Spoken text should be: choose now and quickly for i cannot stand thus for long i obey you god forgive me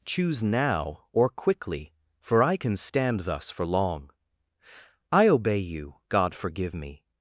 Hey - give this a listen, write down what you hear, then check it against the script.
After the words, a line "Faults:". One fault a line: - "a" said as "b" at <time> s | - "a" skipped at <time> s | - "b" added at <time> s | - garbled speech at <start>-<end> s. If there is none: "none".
choose now or quickly for i can stand thus for long i obey you god forgive me
Faults:
- "and" said as "or" at 1.1 s
- "cannot" said as "can" at 2.6 s